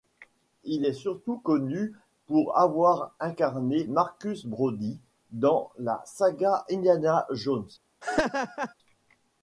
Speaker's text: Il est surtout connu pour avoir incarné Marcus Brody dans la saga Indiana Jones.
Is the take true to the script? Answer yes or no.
yes